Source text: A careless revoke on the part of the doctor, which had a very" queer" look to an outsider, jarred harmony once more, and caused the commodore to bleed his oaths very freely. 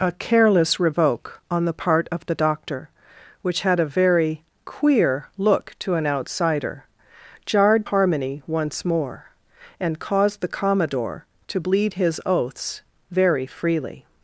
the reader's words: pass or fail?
pass